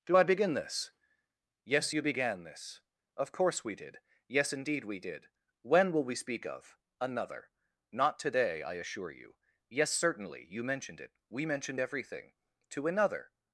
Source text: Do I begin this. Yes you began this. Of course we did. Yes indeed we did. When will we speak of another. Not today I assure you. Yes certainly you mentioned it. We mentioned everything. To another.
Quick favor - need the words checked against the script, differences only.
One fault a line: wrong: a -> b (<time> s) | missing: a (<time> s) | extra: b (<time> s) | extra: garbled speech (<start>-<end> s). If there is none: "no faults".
no faults